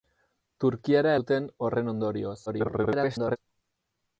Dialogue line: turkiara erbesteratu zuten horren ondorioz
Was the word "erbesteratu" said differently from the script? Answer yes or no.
yes